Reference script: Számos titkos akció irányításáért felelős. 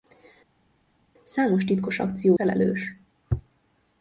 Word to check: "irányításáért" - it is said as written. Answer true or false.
false